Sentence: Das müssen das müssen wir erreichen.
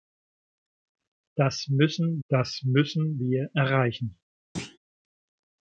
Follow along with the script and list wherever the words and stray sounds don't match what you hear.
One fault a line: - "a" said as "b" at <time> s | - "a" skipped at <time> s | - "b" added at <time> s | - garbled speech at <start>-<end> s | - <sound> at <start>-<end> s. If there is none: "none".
- thud at 4.6-4.8 s